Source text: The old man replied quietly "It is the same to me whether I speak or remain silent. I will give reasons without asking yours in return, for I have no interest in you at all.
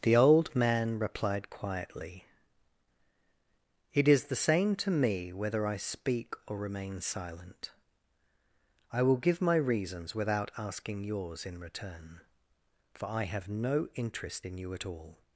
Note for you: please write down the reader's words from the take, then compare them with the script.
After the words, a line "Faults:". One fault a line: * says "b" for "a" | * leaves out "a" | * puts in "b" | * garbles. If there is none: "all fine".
The old man replied quietly "It is the same to me whether I speak or remain silent. I will give my reasons without asking yours in return, for I have no interest in you at all.
Faults:
* puts in "my"